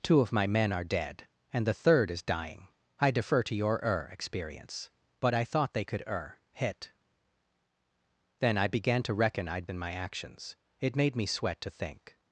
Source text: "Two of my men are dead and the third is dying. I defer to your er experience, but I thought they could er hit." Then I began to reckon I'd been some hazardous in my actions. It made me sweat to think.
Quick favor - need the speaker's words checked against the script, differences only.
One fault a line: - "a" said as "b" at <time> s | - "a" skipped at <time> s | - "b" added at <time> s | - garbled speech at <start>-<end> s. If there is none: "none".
- "been some hazardous" skipped at 9.7 s